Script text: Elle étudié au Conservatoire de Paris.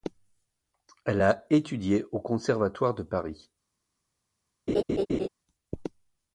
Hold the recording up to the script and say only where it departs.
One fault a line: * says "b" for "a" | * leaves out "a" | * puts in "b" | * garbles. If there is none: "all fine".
* puts in "a"